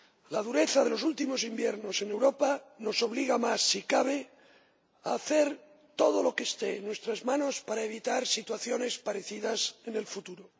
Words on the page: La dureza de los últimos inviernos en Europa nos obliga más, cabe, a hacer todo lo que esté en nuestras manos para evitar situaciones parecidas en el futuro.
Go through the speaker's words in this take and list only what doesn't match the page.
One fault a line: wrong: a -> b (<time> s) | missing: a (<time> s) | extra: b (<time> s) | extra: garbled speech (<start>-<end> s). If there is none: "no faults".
extra: si (3.6 s)